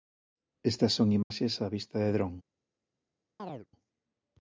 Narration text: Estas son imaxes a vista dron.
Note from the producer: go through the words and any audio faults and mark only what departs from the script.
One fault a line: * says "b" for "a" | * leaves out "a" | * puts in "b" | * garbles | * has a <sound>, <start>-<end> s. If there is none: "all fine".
* has a dropout, 1.2-1.3 s
* puts in "de"
* has a chirp, 3.4-3.7 s